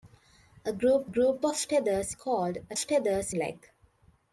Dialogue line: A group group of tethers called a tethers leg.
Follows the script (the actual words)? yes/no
yes